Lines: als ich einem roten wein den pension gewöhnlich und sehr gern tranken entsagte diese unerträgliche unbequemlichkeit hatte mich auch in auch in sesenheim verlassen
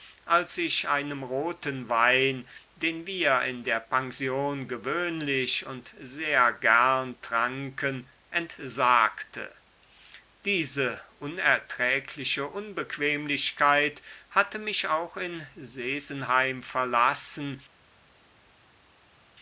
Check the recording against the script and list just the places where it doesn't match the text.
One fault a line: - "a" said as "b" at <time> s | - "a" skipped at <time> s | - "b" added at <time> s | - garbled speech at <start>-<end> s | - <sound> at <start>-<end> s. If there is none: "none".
- "wir in der" added at 3.0 s
- "auch in" skipped at 15.4 s